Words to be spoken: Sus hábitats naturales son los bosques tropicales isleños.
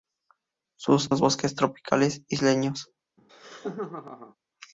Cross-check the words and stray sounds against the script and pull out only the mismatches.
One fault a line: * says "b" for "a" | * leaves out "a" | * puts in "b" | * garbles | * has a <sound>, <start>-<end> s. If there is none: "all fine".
* leaves out "hábitats naturales son"
* has a laugh, 3.2-4.4 s